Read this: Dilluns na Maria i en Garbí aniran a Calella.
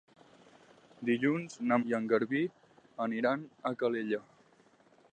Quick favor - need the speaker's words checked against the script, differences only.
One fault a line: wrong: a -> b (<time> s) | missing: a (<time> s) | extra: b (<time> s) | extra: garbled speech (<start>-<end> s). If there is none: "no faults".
missing: Maria (1.8 s)